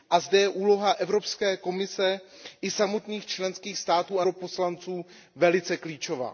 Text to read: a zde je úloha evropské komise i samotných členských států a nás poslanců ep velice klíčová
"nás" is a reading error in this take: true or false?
true